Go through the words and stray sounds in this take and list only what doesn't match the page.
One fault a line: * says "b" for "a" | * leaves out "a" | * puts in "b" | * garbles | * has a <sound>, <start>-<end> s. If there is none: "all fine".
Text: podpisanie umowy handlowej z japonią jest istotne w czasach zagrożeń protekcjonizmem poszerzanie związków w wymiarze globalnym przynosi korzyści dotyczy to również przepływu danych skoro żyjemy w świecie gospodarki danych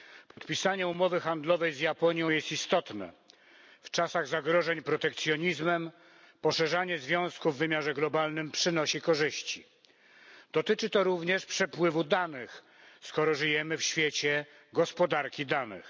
* has a dropout, 0.3-0.4 s